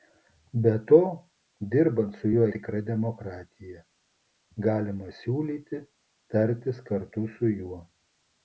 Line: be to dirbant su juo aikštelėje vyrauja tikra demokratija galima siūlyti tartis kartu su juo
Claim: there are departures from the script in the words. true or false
true